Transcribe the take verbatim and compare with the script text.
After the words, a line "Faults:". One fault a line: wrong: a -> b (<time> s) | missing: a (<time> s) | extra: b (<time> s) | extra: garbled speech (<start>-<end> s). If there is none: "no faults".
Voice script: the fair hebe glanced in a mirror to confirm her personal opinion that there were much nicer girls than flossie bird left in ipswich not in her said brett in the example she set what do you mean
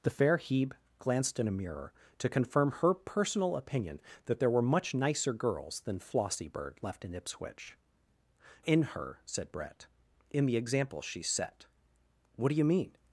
the fair hebe glanced in a mirror to confirm her personal opinion that there were much nicer girls than flossie bird left in ipswich in her said brett in the example she set what do you mean
Faults:
missing: not (7.8 s)